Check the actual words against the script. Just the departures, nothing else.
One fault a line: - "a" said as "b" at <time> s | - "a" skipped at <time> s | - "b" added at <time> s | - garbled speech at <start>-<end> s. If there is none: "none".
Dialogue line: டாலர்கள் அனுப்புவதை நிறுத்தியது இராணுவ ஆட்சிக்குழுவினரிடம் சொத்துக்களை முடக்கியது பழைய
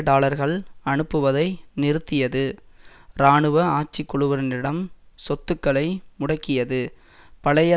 none